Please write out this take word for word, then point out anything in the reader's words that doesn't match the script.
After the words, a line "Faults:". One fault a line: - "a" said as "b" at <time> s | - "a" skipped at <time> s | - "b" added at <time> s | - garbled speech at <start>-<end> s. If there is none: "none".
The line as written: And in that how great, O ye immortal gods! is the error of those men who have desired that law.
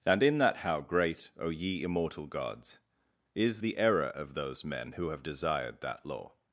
And in that how great, O ye immortal gods! is the error of those men who have desired that law.
Faults:
none